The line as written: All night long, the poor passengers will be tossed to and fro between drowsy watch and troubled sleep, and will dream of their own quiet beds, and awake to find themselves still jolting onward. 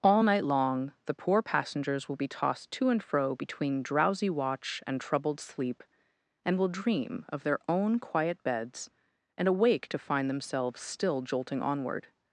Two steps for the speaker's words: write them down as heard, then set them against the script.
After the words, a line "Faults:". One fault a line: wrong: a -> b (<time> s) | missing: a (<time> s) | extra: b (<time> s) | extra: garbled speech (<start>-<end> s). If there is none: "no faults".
All night long, the poor passengers will be tossed to and fro between drowsy watch and troubled sleep, and will dream of their own quiet beds, and awake to find themselves still jolting onward.
Faults:
no faults